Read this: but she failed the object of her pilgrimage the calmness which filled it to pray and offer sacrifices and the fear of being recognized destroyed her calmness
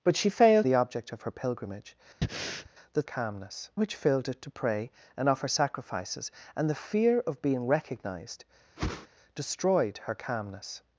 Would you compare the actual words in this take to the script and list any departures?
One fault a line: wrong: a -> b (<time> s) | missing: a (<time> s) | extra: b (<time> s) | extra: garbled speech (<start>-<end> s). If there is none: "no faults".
no faults